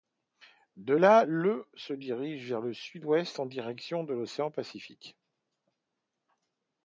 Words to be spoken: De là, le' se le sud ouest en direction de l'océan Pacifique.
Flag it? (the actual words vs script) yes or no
yes